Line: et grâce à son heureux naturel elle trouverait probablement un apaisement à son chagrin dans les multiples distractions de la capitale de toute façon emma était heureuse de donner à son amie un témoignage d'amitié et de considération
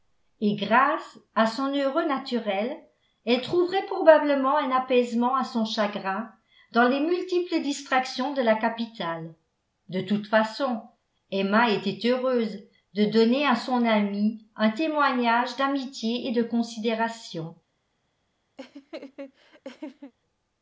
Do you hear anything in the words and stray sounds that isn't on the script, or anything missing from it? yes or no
yes